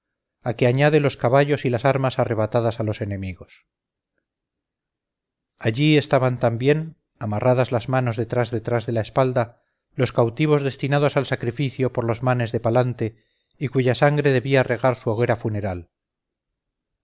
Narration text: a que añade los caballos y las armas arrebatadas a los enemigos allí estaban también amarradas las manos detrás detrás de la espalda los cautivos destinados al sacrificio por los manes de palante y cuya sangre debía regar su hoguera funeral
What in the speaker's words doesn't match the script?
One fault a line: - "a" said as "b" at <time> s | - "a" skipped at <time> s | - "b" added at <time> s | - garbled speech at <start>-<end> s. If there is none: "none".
none